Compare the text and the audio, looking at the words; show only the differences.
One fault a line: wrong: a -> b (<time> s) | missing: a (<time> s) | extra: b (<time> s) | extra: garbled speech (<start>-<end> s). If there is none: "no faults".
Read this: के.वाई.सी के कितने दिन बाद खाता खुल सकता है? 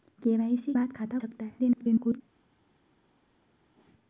missing: के कितने दिन (0.7 s)
missing: खुल (1.2 s)
extra: garbled speech (1.6-2.2 s)